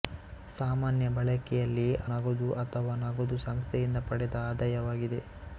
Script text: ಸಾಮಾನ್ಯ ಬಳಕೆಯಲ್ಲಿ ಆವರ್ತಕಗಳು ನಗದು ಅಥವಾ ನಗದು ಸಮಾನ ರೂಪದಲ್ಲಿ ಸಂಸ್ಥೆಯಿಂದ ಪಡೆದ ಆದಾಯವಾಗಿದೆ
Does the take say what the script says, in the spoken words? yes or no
no